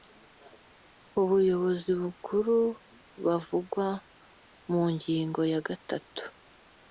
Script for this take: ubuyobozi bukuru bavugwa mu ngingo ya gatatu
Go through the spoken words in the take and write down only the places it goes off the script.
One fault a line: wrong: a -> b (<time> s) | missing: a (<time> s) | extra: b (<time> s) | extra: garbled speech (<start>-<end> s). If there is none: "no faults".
no faults